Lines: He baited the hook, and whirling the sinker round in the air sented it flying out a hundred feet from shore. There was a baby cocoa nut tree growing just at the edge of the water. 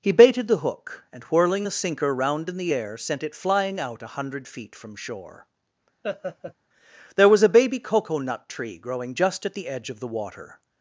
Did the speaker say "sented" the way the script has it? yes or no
no